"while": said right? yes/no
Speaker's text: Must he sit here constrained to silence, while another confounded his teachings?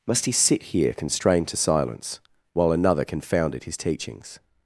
yes